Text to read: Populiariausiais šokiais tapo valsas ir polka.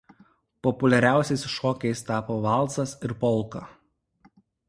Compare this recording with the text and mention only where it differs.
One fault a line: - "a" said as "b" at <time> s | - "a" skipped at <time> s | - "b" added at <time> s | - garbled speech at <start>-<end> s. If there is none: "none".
none